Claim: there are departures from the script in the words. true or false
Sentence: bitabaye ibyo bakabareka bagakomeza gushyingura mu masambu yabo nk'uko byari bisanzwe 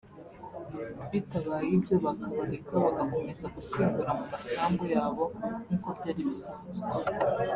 false